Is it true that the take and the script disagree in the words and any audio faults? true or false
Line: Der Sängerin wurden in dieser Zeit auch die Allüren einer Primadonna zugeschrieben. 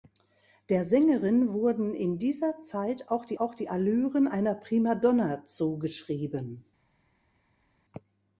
true